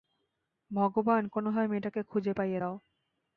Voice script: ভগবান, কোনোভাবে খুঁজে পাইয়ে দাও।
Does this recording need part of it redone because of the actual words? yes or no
yes